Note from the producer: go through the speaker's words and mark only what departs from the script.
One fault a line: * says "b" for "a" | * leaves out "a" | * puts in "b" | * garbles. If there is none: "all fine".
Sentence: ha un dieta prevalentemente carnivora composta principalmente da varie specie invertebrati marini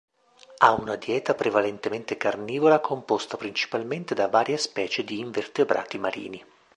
* says "una" for "un"
* puts in "di"